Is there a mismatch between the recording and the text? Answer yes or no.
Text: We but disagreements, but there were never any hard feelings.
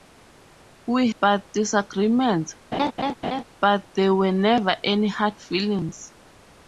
no